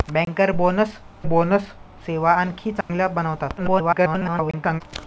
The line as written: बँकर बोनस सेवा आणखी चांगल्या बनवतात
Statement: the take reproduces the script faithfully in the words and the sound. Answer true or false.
false